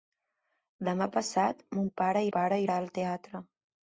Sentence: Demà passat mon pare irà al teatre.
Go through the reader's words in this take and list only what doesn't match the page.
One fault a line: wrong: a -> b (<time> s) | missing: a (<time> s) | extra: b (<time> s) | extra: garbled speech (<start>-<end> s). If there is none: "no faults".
extra: pare (2.4 s)